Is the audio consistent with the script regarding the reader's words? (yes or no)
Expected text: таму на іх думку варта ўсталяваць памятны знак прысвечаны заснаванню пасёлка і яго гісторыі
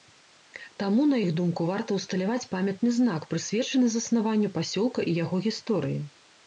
yes